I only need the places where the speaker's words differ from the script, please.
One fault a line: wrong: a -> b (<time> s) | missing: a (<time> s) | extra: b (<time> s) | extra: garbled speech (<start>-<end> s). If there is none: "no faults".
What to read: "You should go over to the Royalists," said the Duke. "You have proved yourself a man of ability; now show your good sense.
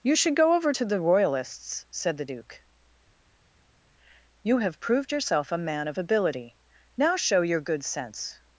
no faults